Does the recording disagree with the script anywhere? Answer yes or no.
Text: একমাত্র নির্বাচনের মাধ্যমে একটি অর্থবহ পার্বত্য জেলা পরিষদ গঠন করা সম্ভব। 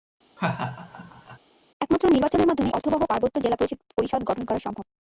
yes